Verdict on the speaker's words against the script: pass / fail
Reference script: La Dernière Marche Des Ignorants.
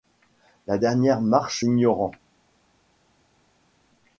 fail